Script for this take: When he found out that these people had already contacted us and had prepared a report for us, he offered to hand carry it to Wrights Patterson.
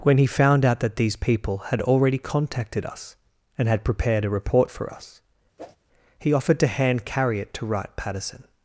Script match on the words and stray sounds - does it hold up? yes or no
no